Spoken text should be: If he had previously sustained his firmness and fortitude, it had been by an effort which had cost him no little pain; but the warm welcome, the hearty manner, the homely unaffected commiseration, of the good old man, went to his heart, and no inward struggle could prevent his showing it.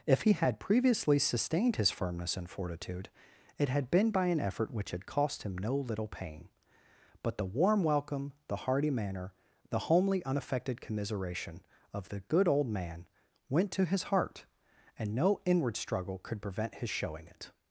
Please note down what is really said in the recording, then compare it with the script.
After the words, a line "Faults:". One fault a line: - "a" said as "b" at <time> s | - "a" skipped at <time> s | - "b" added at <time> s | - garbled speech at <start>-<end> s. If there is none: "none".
If he had previously sustained his firmness and fortitude, it had been by an effort which had cost him no little pain; but the warm welcome, the hearty manner, the homely unaffected commiseration, of the good old man, went to his heart, and no inward struggle could prevent his showing it.
Faults:
none